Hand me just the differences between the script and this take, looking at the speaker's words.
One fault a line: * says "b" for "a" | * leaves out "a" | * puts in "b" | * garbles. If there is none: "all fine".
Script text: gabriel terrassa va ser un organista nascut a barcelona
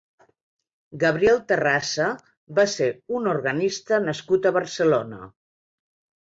all fine